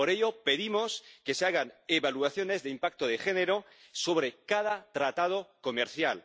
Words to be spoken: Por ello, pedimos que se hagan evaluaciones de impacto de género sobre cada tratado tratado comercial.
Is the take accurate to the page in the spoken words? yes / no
no